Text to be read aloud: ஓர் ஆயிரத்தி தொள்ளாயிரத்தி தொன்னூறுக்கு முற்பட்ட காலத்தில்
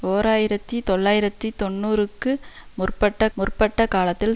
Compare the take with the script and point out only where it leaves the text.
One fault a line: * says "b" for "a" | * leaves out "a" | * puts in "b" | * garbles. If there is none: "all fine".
* puts in "முற்பட்ட"